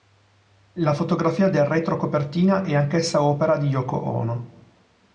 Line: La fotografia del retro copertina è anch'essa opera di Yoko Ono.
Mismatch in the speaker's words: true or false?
false